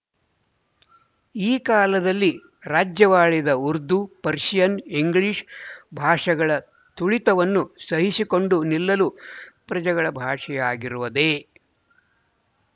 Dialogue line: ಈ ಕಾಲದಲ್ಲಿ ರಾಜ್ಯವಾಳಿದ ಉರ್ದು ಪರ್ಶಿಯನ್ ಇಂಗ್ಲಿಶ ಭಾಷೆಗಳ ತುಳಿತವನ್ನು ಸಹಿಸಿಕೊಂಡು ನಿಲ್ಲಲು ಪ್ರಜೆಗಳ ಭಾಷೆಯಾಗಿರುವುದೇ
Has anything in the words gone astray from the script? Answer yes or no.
no